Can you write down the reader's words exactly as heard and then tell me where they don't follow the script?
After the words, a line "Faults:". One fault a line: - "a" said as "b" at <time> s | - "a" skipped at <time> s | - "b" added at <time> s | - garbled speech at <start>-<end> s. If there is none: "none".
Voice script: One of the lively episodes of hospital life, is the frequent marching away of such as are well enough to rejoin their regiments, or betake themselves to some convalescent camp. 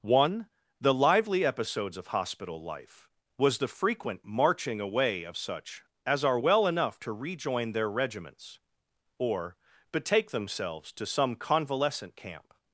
One the lively episodes of hospital life, was the frequent marching away of such as are well enough to rejoin their regiments, or betake themselves to some convalescent camp.
Faults:
- "of" skipped at 0.5 s
- "is" said as "was" at 3.4 s